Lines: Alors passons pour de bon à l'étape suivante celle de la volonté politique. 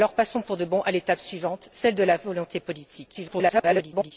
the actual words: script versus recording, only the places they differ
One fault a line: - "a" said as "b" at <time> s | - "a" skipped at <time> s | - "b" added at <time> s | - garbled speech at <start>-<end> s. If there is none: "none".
- garbled speech at 3.1-4.1 s